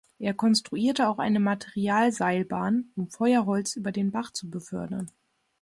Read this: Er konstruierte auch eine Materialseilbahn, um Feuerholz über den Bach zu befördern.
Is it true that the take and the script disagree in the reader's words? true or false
false